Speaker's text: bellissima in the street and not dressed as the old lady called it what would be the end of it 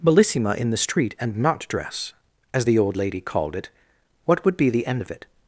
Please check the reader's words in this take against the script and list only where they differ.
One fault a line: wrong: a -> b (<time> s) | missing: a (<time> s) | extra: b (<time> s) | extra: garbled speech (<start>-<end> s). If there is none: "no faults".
wrong: dressed -> dress (1.7 s)